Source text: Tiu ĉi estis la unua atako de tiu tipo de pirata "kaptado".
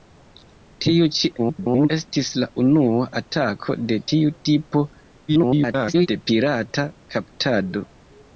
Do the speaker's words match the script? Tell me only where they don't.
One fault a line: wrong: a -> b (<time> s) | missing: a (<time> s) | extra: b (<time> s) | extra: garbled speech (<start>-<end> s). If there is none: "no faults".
extra: garbled speech (1.4-1.9 s)
extra: garbled speech (5.3-6.1 s)